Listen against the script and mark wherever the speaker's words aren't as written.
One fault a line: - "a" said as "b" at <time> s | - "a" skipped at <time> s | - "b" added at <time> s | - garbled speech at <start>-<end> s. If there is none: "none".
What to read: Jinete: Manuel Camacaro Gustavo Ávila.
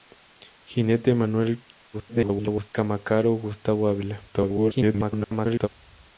- garbled speech at 1.9-2.7 s
- garbled speech at 4.3-5.7 s